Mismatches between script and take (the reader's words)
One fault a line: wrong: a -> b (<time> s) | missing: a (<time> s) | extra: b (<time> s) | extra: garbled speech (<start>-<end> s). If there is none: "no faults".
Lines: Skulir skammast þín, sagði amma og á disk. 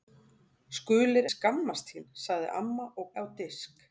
no faults